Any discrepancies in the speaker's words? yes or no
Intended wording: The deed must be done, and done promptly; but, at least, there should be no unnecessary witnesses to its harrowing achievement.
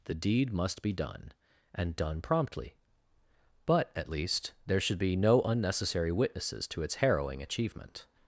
no